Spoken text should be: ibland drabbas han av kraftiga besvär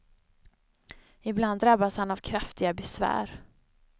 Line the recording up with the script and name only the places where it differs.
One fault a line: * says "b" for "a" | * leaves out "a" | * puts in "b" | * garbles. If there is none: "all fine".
all fine